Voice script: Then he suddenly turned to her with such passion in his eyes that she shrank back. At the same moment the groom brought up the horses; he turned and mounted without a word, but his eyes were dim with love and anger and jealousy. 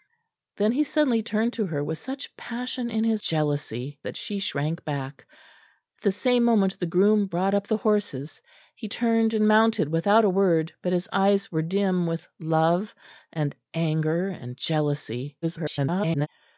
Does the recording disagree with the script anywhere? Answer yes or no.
yes